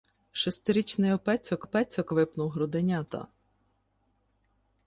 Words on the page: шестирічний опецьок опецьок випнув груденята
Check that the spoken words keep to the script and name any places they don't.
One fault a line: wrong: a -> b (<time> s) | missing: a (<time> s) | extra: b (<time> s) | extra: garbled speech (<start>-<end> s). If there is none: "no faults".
no faults